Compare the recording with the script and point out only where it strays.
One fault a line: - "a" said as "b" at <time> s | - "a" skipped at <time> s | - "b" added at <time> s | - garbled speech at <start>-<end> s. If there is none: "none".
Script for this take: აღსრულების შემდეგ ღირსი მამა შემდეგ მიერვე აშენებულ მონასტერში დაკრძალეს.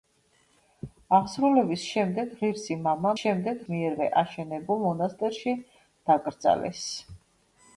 none